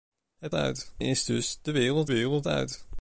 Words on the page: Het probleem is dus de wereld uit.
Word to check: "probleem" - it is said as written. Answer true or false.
false